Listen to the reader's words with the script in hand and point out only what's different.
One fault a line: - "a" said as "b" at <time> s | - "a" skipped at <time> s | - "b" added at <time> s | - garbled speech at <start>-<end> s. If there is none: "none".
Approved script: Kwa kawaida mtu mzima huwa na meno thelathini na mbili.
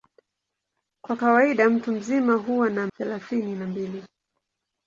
- "meno" skipped at 2.9 s